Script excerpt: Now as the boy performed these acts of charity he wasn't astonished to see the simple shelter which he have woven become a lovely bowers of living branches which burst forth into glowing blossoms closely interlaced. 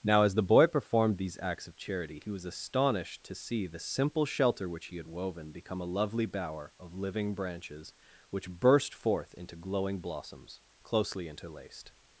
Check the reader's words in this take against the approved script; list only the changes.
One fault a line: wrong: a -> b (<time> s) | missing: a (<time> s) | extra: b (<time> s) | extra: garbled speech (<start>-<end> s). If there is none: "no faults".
wrong: wasn't -> was (2.3 s)
wrong: have -> had (5.0 s)
wrong: bowers -> bower (6.2 s)